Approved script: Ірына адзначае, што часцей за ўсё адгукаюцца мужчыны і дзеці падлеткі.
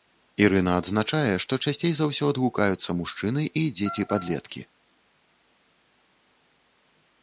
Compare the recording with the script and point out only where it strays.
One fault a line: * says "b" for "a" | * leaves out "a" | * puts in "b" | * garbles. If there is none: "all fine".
all fine